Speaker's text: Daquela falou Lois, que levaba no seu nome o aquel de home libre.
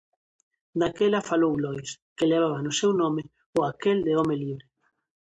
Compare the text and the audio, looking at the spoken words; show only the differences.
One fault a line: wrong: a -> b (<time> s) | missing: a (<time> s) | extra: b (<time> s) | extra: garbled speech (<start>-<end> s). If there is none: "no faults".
no faults